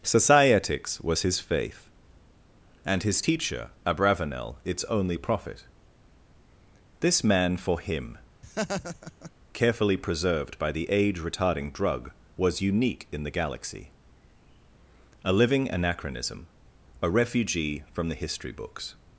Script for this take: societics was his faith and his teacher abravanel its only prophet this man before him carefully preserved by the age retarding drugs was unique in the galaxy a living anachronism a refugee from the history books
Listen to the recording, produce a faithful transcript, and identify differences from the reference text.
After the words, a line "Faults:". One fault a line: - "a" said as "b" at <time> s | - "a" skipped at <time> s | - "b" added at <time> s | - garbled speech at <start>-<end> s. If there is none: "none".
societics was his faith and his teacher abravanel its only prophet this man for him carefully preserved by the age retarding drug was unique in the galaxy a living anachronism a refugee from the history books
Faults:
- "before" said as "for" at 7.6 s
- "drugs" said as "drug" at 11.7 s